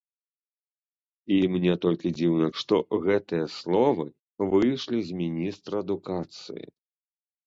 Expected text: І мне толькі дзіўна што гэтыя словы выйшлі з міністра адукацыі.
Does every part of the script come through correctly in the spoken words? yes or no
yes